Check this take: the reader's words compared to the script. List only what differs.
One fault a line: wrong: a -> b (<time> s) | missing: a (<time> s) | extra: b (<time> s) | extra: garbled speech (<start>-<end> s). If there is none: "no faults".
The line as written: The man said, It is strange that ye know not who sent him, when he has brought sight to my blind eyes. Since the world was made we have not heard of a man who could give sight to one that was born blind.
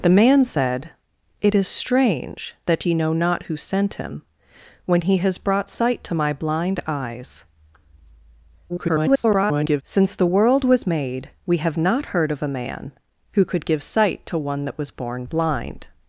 extra: garbled speech (8.7-9.8 s)